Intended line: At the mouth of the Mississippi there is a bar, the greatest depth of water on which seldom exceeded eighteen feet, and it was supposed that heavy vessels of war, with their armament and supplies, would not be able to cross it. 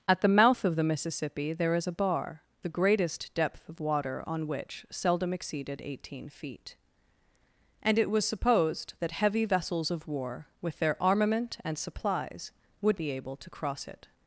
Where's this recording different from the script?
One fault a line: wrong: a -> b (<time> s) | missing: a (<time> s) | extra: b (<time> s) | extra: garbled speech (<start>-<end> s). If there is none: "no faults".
missing: not (13.0 s)